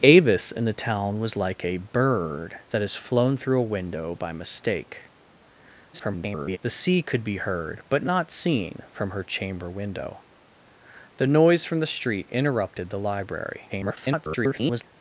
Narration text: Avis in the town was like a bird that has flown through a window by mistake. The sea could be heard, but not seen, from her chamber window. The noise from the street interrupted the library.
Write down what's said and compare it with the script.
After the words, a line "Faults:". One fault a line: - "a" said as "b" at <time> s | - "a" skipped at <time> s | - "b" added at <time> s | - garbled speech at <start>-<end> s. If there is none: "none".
Avis in the town was like a bird that has flown through a window by mistake. [garbled] The sea could be heard, but not seen, from her chamber window. The noise from the street interrupted the library. [garbled]
Faults:
- garbled speech at 5.9-6.6 s
- garbled speech at 13.7-14.8 s